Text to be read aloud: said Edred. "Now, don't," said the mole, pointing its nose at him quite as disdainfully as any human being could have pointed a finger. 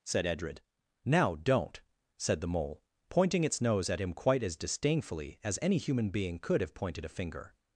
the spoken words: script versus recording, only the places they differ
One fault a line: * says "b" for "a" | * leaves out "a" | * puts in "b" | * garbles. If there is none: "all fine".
all fine